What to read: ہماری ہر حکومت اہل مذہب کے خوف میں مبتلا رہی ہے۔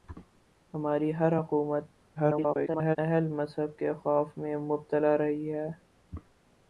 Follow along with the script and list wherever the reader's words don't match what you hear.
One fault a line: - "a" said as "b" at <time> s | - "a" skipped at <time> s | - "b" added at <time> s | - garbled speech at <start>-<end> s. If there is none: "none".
- garbled speech at 2.2-3.0 s